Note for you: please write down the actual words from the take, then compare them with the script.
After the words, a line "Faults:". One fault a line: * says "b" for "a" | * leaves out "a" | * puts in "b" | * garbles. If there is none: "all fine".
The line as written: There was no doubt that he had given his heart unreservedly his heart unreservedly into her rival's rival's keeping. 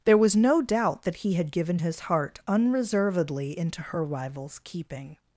There was no doubt that he had given his heart unreservedly into her rival's keeping.
Faults:
* leaves out "his heart unreservedly"
* leaves out "rival's"